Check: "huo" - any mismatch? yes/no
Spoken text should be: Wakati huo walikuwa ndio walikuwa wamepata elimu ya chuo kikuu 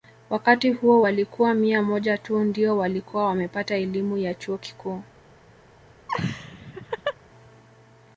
no